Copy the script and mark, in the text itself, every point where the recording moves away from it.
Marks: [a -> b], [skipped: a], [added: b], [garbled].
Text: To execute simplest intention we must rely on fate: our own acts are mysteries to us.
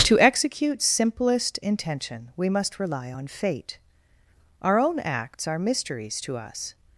To execute simplest intention we must rely on fate: our own acts are mysteries to us.